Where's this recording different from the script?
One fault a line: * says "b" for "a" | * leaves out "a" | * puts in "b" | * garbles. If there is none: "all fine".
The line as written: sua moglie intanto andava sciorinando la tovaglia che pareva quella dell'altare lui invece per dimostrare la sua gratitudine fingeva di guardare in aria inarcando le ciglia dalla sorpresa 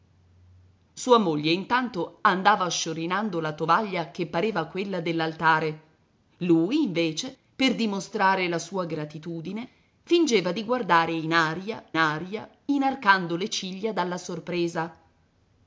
* puts in "aria"